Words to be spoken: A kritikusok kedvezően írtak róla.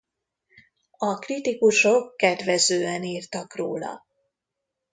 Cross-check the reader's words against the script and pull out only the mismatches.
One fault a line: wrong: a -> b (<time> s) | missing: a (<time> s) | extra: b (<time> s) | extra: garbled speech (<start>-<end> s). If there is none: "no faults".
no faults